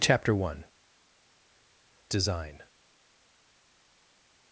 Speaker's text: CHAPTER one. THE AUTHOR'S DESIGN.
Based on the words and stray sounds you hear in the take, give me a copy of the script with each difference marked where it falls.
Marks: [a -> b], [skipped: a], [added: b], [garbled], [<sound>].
CHAPTER one. [skipped: THE AUTHOR'S] DESIGN.